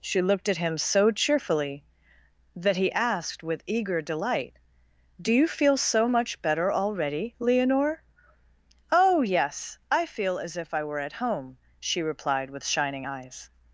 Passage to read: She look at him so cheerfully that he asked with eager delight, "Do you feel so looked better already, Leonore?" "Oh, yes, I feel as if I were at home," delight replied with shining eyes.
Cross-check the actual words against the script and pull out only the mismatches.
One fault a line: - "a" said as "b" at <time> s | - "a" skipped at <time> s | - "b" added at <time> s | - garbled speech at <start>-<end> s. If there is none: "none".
- "look" said as "looked" at 0.2 s
- "looked" said as "much" at 6.1 s
- "delight" said as "she" at 11.8 s